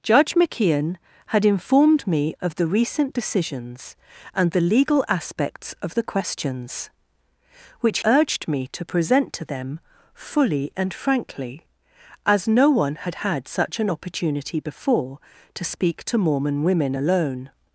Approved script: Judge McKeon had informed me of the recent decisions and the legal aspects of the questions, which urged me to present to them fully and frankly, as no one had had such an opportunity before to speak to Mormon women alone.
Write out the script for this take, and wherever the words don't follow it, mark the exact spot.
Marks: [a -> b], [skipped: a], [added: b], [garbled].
Judge McKeon had informed me of the recent decisions and the legal aspects of the questions, which urged me to present to them fully and frankly, as no one had had such an opportunity before to speak to Mormon women alone.